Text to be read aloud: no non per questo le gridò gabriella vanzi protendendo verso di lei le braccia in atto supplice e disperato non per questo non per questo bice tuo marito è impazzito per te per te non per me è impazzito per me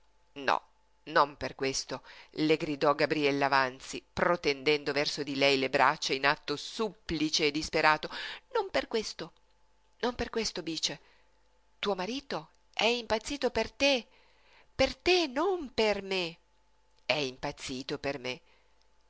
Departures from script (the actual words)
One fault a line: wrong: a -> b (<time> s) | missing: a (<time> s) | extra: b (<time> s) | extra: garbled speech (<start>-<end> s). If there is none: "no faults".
no faults